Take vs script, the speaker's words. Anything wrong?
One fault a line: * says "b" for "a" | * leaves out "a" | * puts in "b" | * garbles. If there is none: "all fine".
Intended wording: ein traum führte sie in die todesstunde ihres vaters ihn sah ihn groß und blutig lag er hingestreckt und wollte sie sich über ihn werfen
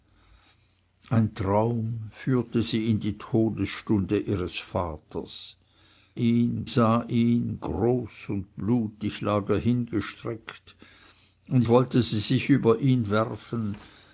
all fine